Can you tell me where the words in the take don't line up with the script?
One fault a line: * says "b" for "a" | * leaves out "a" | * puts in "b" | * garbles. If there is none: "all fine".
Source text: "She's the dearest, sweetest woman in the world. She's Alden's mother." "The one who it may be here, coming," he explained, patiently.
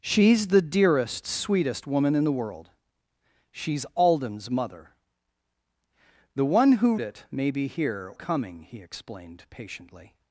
all fine